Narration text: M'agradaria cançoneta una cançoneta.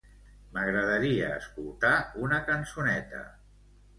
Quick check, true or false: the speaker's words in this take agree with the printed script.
false